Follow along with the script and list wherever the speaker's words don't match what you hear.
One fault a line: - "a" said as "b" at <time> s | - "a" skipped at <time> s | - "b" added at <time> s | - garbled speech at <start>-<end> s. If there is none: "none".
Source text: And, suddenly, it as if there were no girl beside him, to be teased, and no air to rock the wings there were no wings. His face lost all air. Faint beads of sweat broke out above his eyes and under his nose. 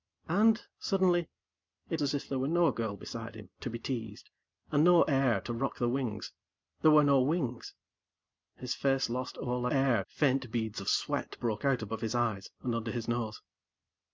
none